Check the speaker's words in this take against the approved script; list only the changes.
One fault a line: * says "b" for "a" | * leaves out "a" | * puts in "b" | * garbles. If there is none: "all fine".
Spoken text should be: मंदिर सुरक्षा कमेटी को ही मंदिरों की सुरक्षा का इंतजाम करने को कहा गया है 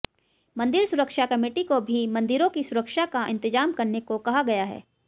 * says "भी" for "ही"